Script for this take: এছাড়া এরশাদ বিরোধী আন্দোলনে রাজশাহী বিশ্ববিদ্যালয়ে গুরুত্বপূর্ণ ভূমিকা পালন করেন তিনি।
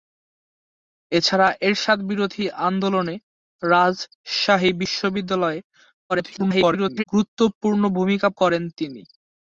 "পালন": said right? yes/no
no